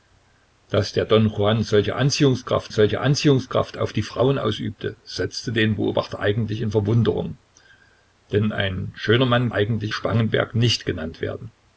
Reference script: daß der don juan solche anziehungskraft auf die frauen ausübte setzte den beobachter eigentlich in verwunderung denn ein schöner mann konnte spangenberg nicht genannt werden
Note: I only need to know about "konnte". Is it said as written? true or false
false